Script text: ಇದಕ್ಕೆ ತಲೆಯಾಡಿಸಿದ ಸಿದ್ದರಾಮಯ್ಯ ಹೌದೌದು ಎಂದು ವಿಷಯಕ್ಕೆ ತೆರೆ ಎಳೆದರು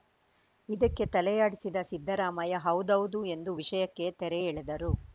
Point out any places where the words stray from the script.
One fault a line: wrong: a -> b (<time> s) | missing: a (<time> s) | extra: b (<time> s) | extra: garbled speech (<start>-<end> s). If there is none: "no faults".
no faults